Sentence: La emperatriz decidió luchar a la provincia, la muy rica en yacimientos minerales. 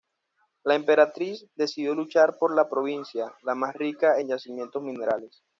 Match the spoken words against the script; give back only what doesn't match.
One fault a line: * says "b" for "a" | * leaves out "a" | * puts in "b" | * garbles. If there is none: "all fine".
* says "por" for "a"
* says "más" for "muy"